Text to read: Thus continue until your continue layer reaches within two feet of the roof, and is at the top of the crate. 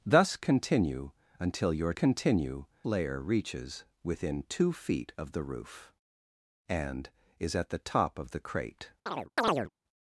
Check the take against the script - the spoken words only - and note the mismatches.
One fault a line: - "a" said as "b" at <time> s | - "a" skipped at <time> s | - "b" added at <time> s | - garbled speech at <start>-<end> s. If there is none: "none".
none